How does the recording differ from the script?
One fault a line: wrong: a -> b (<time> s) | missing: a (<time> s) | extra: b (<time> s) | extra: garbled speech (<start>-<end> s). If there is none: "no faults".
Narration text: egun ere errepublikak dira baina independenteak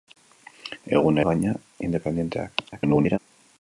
missing: ere errepublikak dira (1.2 s)
extra: garbled speech (2.7-3.2 s)